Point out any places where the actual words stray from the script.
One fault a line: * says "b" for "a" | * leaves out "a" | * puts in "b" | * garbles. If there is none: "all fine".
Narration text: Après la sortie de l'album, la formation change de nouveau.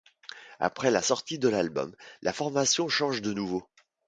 all fine